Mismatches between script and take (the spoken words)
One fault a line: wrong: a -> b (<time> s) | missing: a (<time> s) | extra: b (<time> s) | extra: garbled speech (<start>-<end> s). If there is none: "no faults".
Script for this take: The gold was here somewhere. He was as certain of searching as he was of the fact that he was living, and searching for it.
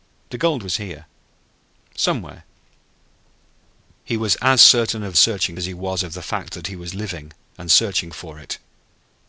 no faults